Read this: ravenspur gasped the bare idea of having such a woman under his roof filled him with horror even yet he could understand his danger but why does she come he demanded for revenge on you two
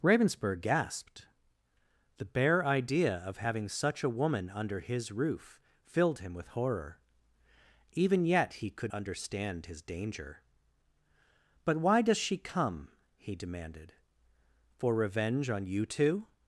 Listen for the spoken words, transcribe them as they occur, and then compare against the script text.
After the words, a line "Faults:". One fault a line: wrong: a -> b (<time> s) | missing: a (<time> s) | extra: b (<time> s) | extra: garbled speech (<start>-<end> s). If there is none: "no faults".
ravenspur gasped the bare idea of having such a woman under his roof filled him with horror even yet he could understand his danger but why does she come he demanded for revenge on you two
Faults:
no faults